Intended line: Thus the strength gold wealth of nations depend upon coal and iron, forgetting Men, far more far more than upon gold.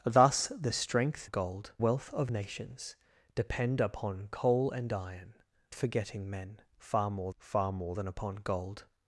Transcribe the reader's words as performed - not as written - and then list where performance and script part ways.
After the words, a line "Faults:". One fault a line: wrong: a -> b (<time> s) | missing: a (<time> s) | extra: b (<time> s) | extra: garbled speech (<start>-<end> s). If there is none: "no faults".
Thus the strength gold wealth of nations depend upon coal and iron, forgetting Men, far more far more than upon gold.
Faults:
no faults